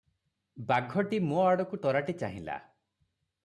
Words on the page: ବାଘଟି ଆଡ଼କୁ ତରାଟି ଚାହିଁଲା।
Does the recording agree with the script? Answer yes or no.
no